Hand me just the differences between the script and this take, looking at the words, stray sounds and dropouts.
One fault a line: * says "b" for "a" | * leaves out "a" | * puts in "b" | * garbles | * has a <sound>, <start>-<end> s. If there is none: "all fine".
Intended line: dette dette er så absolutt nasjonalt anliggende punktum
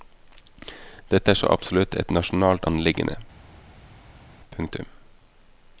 * leaves out "dette"
* puts in "et"